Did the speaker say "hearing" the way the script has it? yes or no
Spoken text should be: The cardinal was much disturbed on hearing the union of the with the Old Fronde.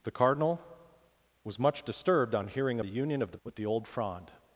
yes